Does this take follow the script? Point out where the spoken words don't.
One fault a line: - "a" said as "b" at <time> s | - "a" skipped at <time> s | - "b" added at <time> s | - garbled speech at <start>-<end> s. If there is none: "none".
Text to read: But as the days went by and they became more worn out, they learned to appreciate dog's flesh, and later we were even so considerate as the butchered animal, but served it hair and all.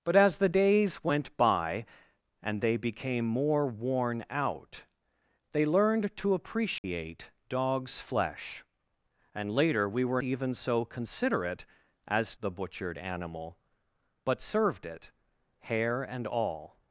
none